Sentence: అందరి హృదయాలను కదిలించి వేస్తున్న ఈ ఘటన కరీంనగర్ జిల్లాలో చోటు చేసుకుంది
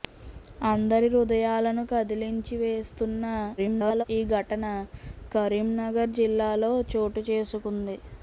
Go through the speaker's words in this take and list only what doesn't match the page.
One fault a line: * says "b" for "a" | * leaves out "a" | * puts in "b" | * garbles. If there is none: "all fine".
* garbles